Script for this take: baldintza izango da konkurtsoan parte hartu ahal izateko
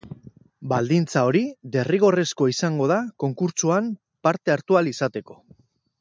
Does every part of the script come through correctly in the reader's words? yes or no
no